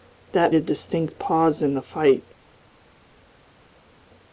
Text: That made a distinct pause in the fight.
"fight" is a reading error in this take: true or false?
false